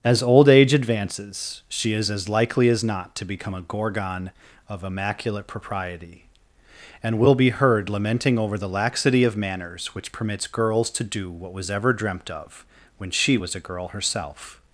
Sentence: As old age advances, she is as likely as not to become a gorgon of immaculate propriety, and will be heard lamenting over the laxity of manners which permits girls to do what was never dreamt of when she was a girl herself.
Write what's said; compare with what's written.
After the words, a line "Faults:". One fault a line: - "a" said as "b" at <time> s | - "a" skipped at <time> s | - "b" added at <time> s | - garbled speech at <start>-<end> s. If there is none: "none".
As old age advances, she is as likely as not to become a gorgon of immaculate propriety, and will be heard lamenting over the laxity of manners which permits girls to do what was ever dreamt of when she was a girl herself.
Faults:
- "never" said as "ever" at 11.7 s